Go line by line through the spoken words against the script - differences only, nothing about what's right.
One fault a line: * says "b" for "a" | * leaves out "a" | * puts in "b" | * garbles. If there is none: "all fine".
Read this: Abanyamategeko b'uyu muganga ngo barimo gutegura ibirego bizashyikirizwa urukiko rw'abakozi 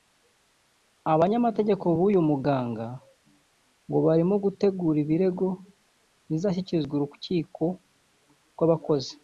all fine